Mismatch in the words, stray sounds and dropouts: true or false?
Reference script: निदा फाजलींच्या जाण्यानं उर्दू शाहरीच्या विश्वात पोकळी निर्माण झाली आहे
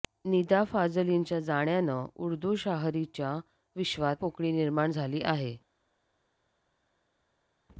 false